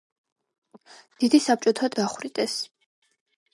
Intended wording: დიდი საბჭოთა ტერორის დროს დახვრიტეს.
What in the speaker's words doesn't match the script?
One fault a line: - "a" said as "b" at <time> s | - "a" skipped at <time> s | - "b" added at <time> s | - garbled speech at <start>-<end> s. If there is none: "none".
- "ტერორის დროს" skipped at 1.9 s